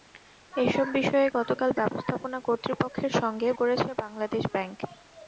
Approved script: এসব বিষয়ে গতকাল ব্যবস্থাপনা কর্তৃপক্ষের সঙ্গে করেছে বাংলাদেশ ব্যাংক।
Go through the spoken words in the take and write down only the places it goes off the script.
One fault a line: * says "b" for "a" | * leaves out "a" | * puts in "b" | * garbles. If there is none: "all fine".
all fine